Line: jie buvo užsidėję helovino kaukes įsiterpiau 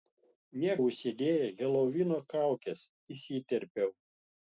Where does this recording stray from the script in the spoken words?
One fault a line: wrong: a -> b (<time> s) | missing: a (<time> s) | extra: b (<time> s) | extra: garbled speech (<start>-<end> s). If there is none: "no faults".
missing: buvo (0.8 s)